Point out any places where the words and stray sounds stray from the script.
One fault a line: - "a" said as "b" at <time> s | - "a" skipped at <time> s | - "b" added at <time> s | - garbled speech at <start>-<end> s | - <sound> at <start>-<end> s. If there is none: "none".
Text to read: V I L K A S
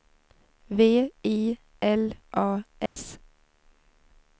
- "K" skipped at 2.1 s
- dropout at 2.9-3.0 s